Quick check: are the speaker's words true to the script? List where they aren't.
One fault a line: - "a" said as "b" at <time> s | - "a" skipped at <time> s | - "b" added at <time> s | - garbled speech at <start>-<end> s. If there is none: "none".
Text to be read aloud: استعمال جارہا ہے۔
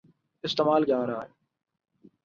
none